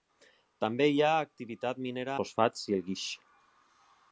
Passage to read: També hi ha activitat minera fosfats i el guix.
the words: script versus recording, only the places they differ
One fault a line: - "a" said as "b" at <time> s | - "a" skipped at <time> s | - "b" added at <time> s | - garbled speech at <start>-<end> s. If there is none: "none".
none